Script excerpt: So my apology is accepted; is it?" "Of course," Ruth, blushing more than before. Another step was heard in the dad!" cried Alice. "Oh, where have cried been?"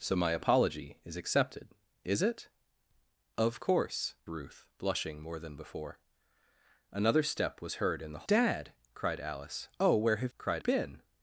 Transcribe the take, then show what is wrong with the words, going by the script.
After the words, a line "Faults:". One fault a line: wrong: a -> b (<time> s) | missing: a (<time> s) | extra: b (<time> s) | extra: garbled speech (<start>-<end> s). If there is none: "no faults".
So my apology is accepted; is it?" "Of course," Ruth, blushing more than before. Another step was heard in the dad!" cried Alice. "Oh, where have cried been?"
Faults:
no faults